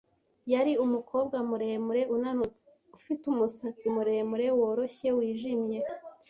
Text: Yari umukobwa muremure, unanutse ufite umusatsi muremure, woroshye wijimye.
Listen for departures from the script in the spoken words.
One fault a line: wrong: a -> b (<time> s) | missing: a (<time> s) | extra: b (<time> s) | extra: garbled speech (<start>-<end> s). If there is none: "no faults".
no faults